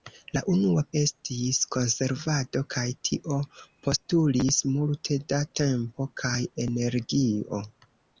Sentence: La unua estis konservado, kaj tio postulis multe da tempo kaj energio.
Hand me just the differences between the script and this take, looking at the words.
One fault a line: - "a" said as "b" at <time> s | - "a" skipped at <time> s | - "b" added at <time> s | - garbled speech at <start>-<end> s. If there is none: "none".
none